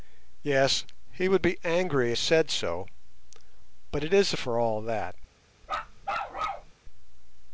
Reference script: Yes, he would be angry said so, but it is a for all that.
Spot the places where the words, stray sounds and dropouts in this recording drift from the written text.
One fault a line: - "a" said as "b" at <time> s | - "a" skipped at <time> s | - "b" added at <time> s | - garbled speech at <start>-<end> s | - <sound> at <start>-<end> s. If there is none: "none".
- bark at 5.6-6.7 s